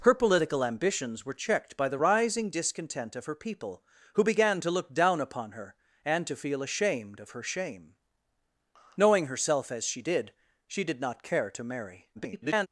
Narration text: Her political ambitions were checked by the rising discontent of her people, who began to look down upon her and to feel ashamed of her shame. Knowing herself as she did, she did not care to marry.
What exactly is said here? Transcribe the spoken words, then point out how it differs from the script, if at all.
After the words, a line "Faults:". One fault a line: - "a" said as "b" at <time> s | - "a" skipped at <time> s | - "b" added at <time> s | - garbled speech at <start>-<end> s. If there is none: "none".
Her political ambitions were checked by the rising discontent of her people, who began to look down upon her and to feel ashamed of her shame. Knowing herself as she did, she did not care to marry. [garbled]
Faults:
- garbled speech at 12.1-12.7 s